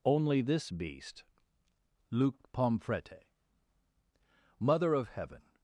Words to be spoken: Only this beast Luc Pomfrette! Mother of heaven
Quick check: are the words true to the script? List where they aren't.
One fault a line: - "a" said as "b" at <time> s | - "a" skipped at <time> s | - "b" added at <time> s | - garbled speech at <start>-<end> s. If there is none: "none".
none